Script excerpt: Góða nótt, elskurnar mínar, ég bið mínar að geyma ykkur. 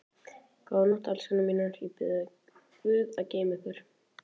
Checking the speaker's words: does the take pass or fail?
fail